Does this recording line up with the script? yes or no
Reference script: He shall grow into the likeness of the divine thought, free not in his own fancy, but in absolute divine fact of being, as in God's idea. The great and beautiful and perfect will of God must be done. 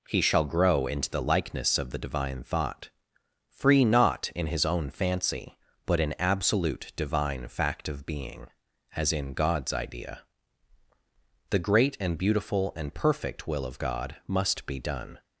yes